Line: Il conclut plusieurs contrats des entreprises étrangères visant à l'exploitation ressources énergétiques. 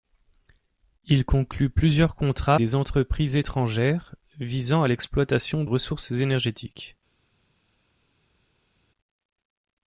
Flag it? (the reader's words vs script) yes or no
no